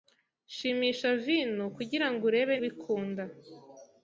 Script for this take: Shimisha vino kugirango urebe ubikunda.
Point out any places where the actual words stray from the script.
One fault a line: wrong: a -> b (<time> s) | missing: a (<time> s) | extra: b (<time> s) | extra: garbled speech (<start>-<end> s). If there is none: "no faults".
no faults